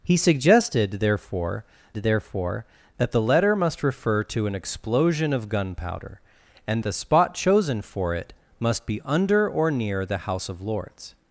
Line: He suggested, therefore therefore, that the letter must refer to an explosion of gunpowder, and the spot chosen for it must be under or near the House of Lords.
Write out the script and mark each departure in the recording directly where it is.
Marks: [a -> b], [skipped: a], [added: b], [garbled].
He suggested, therefore therefore, that the letter must refer to an explosion of gunpowder, and the spot chosen for it must be under or near the House of Lords.